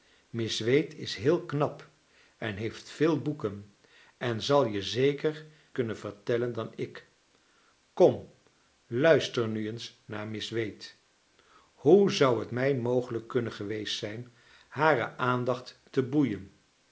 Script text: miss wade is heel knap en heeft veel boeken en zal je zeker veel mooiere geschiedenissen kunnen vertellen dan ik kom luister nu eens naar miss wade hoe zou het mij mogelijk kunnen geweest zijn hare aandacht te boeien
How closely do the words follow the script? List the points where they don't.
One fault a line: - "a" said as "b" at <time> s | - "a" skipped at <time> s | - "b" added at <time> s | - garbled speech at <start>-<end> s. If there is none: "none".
- "veel mooiere geschiedenissen" skipped at 5.5 s